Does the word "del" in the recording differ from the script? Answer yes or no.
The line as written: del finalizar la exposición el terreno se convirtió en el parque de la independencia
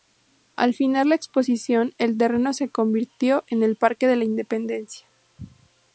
yes